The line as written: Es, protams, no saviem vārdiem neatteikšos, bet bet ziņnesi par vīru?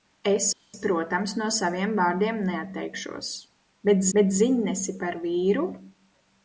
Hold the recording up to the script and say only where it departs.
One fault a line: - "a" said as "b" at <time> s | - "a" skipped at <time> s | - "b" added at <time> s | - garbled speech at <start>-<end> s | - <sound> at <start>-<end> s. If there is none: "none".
none